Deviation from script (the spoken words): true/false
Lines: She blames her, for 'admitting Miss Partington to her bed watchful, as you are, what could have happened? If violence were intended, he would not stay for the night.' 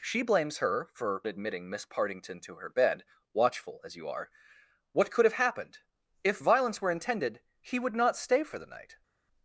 false